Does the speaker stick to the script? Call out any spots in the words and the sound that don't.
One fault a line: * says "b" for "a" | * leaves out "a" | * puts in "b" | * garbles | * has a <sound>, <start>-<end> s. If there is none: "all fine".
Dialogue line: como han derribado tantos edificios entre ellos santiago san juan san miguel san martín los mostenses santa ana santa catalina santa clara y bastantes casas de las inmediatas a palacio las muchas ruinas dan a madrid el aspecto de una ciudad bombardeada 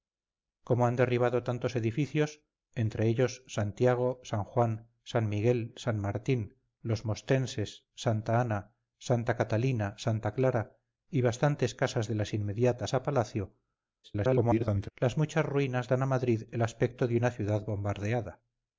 * garbles